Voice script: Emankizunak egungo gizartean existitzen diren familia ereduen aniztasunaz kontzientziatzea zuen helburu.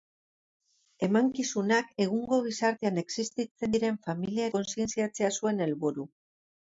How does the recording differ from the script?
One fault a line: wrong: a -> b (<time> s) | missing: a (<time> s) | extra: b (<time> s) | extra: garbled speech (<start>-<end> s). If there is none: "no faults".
missing: ereduen aniztasunaz (4.5 s)